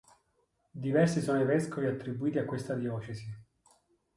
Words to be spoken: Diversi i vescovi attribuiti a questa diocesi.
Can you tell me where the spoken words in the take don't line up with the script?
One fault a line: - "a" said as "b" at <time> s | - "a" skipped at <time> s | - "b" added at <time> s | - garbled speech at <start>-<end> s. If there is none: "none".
- "sono" added at 1.2 s